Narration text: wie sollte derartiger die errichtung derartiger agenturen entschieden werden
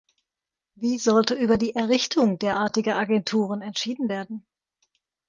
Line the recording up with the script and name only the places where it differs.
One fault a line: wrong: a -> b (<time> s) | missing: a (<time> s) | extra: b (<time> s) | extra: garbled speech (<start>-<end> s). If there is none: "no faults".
wrong: derartiger -> über (1.4 s)